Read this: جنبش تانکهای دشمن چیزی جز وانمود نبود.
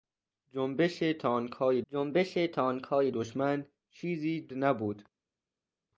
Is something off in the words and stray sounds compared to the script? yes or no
yes